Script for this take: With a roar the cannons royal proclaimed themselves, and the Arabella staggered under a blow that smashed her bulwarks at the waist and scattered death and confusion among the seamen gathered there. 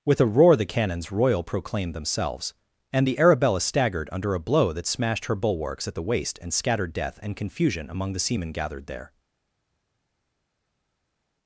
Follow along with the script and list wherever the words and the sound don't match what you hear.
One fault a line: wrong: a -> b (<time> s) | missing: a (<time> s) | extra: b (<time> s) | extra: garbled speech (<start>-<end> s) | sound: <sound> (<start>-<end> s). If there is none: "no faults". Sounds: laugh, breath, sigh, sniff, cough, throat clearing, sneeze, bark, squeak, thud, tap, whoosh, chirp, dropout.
no faults